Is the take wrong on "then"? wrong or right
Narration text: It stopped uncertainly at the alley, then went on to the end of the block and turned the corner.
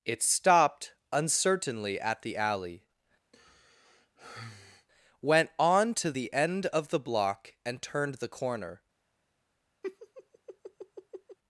wrong